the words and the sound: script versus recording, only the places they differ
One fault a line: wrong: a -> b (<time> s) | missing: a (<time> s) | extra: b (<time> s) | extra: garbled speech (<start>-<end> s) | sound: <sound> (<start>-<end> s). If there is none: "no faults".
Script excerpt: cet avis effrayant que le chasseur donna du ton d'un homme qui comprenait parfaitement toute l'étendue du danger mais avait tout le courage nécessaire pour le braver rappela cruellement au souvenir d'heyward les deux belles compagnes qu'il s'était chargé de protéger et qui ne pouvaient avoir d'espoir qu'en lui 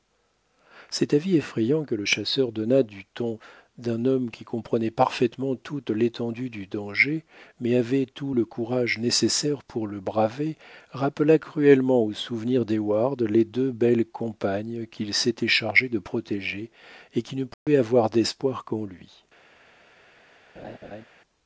sound: dropout (17.5-17.7 s)
sound: laugh (20.6-21.0 s)